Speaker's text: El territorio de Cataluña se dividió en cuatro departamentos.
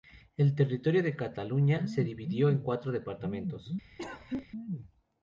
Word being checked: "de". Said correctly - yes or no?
yes